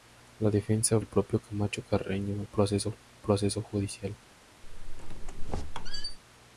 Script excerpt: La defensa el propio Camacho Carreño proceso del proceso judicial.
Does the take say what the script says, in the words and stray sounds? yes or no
no